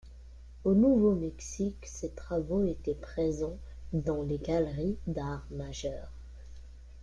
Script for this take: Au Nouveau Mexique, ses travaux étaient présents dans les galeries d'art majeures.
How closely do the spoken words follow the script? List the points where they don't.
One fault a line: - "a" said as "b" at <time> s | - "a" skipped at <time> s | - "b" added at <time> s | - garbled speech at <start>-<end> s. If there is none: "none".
none